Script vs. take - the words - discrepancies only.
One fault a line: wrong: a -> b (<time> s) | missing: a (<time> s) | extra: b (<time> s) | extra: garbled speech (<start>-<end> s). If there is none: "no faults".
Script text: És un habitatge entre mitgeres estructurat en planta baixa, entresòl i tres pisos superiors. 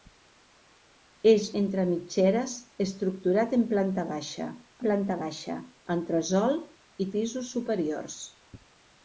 missing: un habitatge (1.4 s)
extra: planta baixa (4.9 s)
missing: tres (7.1 s)